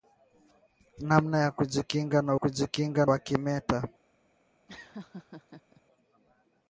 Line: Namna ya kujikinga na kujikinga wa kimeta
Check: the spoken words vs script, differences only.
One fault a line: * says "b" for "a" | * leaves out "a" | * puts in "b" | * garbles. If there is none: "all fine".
all fine